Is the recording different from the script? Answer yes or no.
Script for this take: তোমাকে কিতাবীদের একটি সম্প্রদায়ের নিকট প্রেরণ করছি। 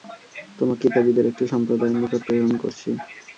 no